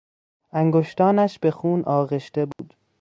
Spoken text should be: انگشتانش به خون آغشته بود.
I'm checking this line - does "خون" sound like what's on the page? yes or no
yes